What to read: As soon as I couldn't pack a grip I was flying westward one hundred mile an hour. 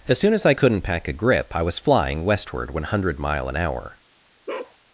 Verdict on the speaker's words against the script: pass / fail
pass